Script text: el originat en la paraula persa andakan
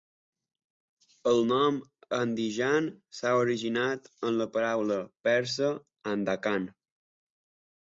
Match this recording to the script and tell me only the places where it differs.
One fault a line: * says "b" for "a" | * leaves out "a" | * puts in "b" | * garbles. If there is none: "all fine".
* puts in "nom andijan s'ha"